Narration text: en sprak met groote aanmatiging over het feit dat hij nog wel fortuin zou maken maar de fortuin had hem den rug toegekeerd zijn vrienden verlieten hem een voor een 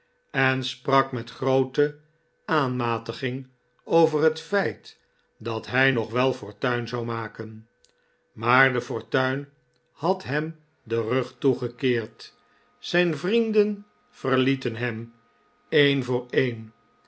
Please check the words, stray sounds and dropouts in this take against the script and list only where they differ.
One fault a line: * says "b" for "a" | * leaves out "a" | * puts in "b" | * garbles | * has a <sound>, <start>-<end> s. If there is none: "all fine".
all fine